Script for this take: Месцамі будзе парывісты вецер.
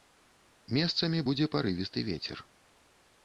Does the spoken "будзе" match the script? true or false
true